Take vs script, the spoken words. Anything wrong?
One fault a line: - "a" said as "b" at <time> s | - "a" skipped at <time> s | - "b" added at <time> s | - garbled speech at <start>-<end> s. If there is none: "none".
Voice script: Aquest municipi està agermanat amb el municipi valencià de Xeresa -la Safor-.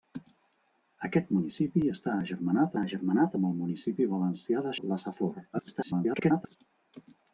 - "agermanat" added at 2.8 s
- "Xeresa" skipped at 4.7 s
- garbled speech at 5.5-6.6 s